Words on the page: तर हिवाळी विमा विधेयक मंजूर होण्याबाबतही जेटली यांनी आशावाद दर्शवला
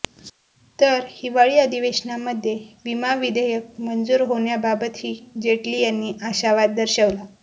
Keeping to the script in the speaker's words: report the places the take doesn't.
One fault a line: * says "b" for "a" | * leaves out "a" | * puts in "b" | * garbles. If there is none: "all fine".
* puts in "अधिवेशनामध्ये"